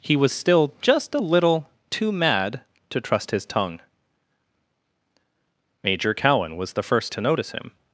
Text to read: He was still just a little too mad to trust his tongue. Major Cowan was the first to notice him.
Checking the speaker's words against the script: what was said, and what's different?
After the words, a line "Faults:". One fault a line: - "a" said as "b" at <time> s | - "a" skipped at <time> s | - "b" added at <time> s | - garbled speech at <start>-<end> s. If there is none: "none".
He was still just a little too mad to trust his tongue. Major Cowan was the first to notice him.
Faults:
none